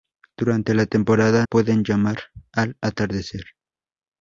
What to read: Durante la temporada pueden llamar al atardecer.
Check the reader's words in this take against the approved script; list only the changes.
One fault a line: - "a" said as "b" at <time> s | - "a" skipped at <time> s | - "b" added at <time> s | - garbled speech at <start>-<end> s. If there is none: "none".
none